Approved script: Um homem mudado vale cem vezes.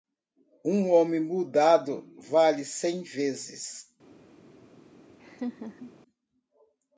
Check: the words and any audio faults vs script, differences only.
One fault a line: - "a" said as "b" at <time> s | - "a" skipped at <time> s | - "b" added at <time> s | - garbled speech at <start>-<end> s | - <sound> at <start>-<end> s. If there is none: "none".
- laugh at 5.2-5.9 s